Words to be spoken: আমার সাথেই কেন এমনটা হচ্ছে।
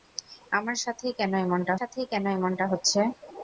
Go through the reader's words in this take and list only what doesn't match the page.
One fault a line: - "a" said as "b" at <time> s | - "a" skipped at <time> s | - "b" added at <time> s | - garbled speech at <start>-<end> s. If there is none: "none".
- "সাথেই কেন এমনটা" added at 1.8 s